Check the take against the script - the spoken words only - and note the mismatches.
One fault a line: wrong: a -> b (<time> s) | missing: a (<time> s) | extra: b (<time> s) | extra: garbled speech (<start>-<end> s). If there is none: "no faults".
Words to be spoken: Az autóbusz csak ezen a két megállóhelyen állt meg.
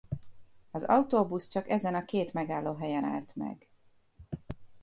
no faults